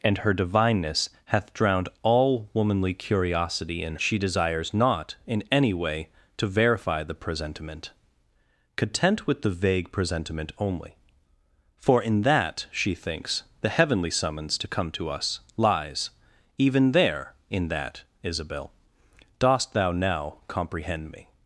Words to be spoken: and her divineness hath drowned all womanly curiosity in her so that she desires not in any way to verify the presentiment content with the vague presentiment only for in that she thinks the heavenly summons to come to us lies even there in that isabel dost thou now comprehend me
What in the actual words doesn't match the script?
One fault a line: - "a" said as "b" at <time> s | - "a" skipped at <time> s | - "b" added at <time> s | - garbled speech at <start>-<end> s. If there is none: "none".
- "her so that" skipped at 4.0 s